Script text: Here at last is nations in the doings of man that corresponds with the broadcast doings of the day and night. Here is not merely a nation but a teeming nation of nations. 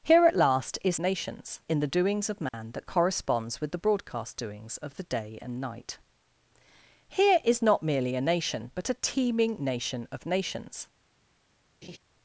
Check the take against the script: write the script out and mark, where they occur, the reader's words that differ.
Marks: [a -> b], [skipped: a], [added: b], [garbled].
Here at last is nations in the doings of man that corresponds with the broadcast doings of the day and night. Here is not merely a nation but a teeming nation of nations.